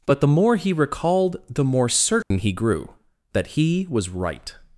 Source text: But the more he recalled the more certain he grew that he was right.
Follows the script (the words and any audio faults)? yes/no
no